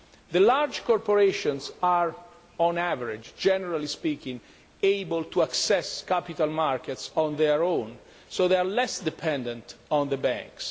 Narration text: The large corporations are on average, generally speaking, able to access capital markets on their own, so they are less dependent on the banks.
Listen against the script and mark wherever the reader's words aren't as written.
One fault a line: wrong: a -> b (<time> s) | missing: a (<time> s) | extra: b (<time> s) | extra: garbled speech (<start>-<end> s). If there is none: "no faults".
no faults